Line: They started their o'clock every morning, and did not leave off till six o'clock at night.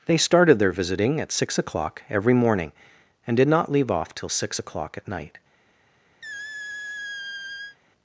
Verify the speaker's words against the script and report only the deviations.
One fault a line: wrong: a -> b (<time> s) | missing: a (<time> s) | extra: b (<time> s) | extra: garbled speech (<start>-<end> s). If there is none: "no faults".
extra: visiting at six (0.7 s)